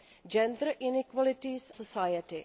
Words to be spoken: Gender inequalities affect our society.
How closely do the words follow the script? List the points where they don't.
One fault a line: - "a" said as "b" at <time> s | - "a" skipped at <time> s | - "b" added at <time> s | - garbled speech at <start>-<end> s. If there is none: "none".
- "affect our" skipped at 1.7 s